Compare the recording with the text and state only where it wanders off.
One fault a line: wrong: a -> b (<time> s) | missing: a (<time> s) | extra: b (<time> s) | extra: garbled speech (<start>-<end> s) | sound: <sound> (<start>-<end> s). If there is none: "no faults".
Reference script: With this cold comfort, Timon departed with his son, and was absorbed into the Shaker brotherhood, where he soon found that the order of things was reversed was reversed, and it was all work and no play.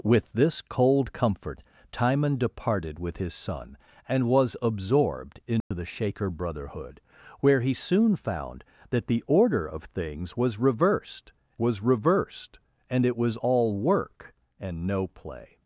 sound: dropout (5.6-5.7 s)